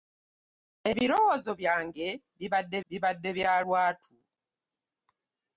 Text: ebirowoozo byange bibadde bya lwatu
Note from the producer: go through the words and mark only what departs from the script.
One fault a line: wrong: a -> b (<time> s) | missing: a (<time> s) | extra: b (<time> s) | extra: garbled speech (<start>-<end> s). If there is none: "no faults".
extra: bibadde (2.9 s)